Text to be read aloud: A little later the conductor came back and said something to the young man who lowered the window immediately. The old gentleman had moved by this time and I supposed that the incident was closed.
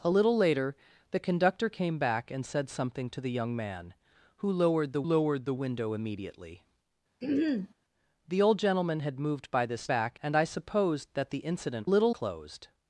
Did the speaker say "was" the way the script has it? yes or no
no